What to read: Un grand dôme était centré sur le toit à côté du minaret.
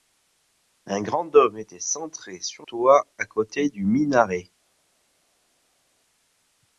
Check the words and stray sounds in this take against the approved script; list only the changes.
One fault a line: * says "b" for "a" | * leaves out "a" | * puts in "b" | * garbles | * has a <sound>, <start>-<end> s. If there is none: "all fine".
* leaves out "le"